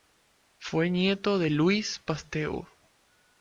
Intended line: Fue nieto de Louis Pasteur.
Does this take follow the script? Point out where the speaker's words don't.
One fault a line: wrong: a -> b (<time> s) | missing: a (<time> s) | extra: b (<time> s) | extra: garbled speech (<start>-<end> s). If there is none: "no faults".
no faults